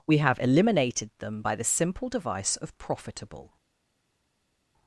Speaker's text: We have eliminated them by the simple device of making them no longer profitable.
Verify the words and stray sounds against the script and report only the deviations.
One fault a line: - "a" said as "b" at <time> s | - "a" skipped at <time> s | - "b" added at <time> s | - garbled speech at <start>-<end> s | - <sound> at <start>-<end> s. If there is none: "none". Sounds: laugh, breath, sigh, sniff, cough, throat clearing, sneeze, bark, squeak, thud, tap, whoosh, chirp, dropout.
- "making them no longer" skipped at 2.8 s